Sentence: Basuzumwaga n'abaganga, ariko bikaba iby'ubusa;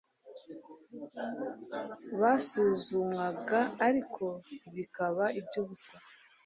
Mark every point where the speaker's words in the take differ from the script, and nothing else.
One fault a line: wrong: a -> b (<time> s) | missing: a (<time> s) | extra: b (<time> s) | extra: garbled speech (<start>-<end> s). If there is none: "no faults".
missing: n'abaganga (3.6 s)